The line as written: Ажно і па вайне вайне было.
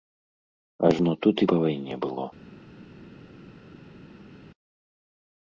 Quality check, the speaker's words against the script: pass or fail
fail